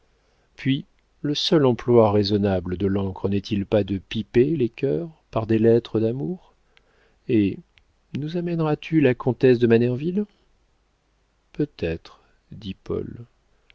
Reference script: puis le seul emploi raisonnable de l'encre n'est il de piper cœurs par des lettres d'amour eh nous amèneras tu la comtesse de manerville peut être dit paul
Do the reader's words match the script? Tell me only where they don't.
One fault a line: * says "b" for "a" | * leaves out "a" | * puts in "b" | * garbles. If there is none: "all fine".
* puts in "pas"
* puts in "les"